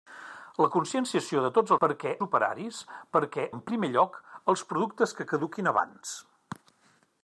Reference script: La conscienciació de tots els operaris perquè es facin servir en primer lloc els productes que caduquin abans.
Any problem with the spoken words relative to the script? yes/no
yes